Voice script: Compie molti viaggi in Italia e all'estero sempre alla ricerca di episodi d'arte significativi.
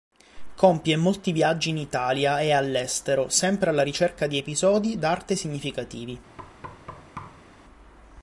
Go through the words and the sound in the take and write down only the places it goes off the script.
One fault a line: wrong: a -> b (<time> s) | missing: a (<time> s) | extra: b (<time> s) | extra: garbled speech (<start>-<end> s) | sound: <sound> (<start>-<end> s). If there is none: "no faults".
sound: thud (6.4-7.5 s)